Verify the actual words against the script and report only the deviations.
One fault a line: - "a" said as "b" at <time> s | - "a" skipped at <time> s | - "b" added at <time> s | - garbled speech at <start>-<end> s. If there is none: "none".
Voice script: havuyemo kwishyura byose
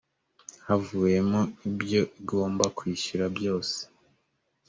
- "ibyo igomba" added at 1.7 s